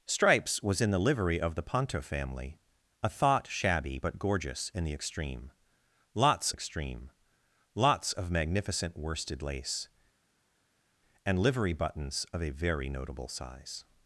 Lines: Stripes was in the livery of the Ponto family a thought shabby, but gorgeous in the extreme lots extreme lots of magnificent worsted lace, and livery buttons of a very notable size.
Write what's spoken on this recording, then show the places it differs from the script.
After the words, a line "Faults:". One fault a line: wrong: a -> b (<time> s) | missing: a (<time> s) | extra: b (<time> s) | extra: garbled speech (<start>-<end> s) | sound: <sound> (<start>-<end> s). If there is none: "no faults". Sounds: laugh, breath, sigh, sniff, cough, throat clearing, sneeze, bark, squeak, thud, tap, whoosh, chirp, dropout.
Stripes was in the livery of the Ponto family a thought shabby, but gorgeous in the extreme lots extreme lots of magnificent worsted lace, and livery buttons of a very notable size.
Faults:
no faults